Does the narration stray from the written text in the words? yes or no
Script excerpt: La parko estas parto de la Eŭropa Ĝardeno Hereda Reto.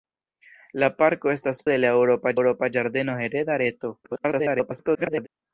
yes